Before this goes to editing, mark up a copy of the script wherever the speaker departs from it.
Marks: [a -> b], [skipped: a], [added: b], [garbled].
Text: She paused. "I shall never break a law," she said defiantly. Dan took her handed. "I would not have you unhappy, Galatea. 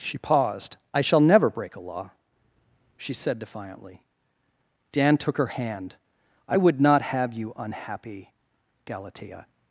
She paused. "I shall never break a law," she said defiantly. Dan took her [handed. -> hand] "I would not have you unhappy, Galatea.